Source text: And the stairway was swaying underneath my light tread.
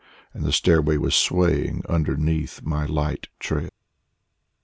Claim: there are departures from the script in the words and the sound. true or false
false